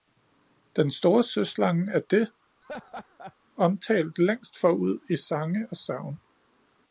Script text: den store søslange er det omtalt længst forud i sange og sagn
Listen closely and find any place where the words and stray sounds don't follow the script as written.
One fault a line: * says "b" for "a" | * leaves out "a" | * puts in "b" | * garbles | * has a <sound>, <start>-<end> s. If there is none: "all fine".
* has a laugh, 2.6-3.4 s